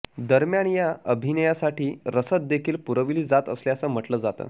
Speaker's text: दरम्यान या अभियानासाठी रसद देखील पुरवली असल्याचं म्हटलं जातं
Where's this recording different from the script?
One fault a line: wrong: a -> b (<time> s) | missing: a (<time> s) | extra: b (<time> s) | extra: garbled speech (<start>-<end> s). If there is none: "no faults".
extra: जात (3.2 s)